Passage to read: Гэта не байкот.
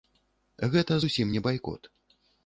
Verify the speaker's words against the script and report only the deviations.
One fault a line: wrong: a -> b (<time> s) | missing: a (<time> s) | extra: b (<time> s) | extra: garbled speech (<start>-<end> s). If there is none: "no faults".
extra: зусім (1.0 s)